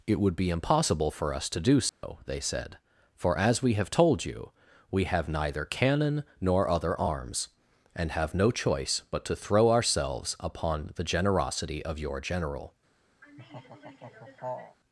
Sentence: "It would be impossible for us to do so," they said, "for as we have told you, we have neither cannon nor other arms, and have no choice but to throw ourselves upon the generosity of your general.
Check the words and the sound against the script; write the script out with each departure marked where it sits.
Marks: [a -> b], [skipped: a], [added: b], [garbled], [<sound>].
"It would be impossible for us to do so," [dropout] they said, "for as we have told you, we have neither cannon nor other arms, and have no choice but to throw ourselves upon the generosity of your general. [laugh]